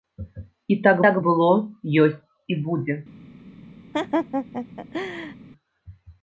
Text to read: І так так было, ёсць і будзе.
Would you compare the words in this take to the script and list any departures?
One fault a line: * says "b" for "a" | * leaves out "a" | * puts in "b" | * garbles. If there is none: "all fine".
all fine